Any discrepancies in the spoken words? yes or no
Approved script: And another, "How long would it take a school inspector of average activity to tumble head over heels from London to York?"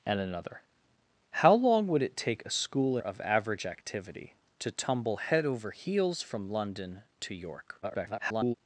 yes